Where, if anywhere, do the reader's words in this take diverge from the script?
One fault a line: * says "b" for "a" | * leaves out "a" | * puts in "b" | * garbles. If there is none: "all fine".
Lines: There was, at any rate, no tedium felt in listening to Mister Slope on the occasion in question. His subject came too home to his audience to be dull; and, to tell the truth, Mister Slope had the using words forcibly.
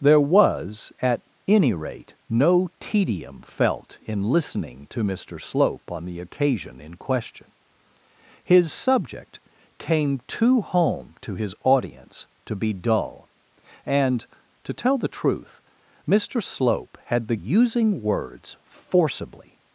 all fine